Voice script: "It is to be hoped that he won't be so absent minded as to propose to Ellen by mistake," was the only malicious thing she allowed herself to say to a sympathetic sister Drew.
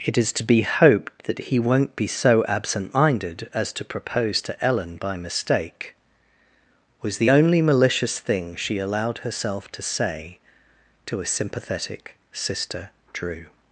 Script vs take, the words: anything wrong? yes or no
no